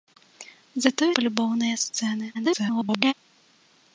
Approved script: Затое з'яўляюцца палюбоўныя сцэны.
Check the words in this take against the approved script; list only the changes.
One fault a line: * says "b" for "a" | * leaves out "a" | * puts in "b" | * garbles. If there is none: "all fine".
* leaves out "з'яўляюцца"
* garbles